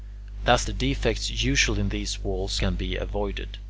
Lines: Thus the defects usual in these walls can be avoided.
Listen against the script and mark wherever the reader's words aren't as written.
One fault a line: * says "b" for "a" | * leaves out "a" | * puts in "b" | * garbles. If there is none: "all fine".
all fine